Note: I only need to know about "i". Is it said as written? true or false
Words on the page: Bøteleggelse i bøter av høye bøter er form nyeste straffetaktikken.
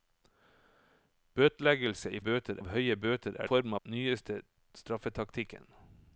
true